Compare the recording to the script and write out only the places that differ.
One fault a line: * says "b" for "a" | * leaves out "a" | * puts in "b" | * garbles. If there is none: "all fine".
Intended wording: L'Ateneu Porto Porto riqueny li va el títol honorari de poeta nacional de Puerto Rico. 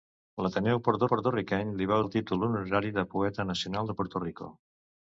all fine